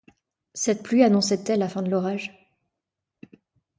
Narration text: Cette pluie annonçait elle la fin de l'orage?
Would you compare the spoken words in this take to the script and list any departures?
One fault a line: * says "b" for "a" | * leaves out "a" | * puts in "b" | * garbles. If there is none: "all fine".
all fine